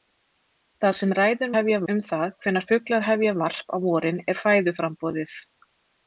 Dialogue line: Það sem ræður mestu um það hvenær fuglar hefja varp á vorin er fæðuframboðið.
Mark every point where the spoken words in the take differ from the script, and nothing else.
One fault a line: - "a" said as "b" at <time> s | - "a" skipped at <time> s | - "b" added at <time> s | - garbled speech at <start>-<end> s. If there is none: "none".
- "mestu" said as "hefja" at 1.6 s